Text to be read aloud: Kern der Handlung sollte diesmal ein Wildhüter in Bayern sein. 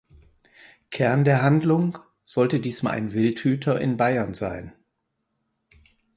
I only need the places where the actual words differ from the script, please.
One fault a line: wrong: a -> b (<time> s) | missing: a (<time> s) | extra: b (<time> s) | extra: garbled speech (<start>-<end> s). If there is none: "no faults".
no faults